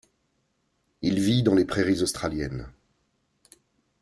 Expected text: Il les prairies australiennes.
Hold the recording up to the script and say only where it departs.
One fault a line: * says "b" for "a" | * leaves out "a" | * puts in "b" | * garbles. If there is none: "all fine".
* puts in "vit dans"